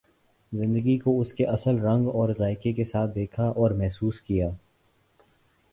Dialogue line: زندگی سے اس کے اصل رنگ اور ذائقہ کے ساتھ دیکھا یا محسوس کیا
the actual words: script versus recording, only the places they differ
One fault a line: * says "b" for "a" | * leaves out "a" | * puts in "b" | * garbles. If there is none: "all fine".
* says "کو" for "سے"
* says "اور" for "یا"